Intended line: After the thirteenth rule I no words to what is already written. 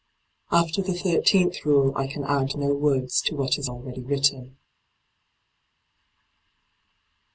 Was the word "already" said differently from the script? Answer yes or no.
no